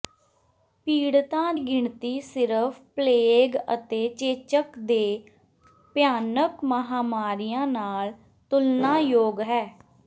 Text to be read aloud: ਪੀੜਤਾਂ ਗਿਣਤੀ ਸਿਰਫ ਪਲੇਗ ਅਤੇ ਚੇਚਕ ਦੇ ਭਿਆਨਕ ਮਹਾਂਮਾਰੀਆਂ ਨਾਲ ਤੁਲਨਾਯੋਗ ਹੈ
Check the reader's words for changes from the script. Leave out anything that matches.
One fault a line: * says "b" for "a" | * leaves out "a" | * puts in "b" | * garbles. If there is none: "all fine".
all fine